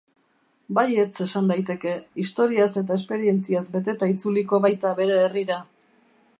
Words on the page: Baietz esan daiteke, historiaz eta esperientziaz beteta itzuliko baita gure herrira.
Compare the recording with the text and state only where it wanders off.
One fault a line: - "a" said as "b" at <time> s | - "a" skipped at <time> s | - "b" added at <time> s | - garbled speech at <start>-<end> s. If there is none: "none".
- "gure" said as "bere" at 5.0 s